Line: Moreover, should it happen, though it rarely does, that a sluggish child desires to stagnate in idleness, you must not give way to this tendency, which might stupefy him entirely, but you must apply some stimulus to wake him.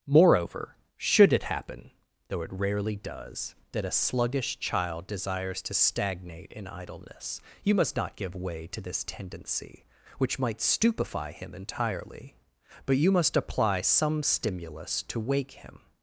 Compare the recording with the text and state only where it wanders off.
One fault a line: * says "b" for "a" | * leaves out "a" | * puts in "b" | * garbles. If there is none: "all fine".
all fine